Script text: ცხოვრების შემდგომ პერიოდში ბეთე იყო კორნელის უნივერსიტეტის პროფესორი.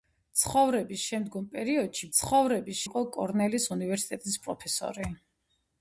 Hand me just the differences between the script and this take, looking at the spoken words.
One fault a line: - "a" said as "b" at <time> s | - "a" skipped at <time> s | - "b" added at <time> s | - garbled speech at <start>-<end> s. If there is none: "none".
- "ბეთე" said as "ცხოვრების" at 2.2 s